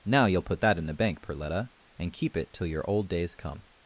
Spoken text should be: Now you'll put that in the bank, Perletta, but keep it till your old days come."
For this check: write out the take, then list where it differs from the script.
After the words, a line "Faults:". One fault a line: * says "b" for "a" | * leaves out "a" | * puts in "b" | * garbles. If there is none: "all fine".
Now you'll put that in the bank, Perletta, and keep it till your old days come."
Faults:
* says "and" for "but"